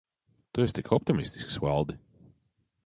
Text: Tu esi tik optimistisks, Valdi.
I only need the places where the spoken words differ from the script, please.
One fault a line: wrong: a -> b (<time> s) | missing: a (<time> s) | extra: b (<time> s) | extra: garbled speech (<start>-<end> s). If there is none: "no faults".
no faults